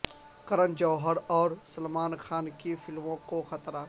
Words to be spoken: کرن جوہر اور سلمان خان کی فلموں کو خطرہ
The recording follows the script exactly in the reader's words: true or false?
true